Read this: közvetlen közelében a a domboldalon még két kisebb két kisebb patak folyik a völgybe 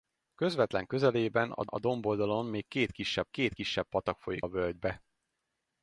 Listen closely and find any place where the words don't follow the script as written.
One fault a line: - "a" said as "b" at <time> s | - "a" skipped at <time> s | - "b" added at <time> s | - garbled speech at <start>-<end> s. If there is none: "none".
none